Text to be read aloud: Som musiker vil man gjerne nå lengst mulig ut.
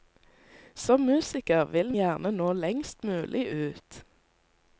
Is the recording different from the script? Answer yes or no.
yes